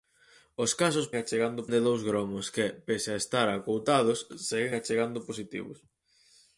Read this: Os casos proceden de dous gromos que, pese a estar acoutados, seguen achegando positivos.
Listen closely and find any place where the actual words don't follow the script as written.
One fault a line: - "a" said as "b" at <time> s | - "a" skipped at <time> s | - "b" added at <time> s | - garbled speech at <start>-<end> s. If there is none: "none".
- "proceden" said as "achegando" at 1.2 s